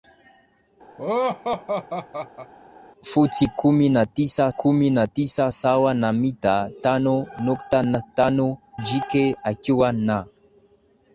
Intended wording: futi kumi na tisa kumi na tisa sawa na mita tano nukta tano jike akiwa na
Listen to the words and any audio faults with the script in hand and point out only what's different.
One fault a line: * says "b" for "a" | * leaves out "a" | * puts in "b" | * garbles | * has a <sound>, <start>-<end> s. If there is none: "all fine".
* has a laugh, 1.0-2.5 s